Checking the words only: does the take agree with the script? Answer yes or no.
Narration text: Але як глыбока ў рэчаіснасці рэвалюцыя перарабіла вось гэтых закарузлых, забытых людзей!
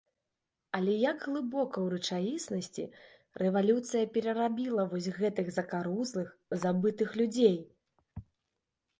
yes